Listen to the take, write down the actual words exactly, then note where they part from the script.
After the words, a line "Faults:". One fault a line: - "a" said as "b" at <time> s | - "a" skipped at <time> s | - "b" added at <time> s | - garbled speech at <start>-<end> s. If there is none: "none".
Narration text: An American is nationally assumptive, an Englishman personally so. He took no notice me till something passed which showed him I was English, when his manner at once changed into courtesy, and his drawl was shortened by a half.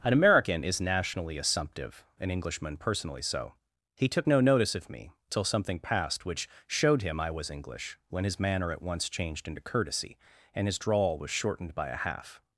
An American is nationally assumptive, an Englishman personally so. He took no notice of me till something passed which showed him I was English, when his manner at once changed into courtesy, and his drawl was shortened by a half.
Faults:
- "of" added at 4.7 s